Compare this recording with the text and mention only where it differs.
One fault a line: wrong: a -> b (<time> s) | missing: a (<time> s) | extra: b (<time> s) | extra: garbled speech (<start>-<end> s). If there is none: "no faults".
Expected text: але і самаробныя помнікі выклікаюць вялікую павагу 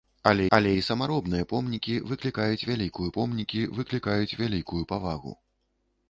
extra: але (0.6 s)
extra: помнікі выклікаюць вялікую (3.2 s)